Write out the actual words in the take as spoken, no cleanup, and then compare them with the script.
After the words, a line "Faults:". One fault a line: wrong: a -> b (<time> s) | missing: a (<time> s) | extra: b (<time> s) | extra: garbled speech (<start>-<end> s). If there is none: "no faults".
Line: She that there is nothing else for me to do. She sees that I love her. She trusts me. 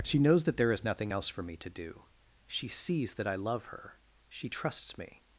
She knows that there is nothing else for me to do. She sees that I love her. She trusts me.
Faults:
extra: knows (0.2 s)